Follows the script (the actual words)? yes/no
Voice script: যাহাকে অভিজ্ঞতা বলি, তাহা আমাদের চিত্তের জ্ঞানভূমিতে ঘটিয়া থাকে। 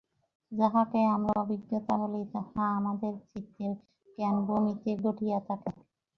no